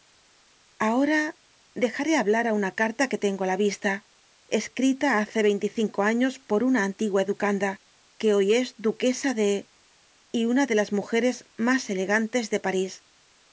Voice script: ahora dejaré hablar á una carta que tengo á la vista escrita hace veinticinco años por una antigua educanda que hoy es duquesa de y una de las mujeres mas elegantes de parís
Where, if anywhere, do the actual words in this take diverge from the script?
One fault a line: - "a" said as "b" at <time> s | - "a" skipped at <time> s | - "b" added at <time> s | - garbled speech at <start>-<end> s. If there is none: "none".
none